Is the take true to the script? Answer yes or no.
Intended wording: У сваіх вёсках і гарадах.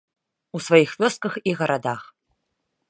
yes